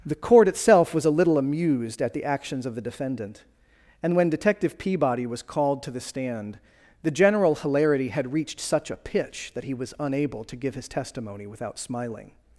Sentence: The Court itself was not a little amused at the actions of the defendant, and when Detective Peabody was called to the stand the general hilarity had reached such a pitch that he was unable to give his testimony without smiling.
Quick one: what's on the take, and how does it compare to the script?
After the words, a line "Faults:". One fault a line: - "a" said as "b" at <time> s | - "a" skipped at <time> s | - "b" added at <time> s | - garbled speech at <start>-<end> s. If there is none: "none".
The Court itself was a little amused at the actions of the defendant, and when Detective Peabody was called to the stand the general hilarity had reached such a pitch that he was unable to give his testimony without smiling.
Faults:
- "not" skipped at 1.1 s